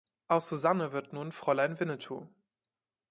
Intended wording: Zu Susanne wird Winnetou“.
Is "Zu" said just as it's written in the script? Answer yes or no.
no